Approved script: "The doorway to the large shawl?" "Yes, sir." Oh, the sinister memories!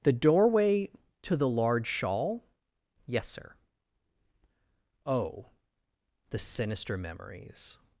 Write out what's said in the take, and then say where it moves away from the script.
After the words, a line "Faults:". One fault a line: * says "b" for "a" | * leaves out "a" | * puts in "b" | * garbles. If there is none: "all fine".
"The doorway to the large shawl?" "Yes, sir." Oh, the sinister memories!
Faults:
all fine